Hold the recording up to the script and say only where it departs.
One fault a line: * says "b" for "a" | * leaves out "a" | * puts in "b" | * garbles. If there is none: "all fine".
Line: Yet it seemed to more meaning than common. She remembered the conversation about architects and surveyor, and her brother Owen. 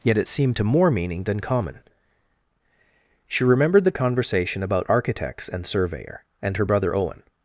all fine